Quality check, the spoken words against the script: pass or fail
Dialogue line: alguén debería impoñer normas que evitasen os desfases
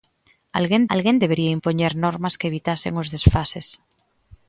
fail